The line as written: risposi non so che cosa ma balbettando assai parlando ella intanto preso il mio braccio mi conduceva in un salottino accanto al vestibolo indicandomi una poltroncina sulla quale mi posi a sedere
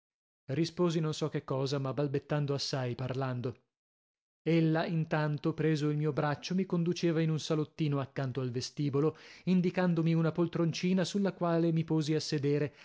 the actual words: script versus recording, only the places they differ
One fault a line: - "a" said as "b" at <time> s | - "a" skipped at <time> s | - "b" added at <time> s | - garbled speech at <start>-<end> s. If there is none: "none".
none